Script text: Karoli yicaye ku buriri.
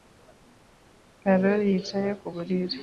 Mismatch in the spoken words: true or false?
false